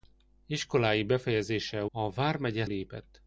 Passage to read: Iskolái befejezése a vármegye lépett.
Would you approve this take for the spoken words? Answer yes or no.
yes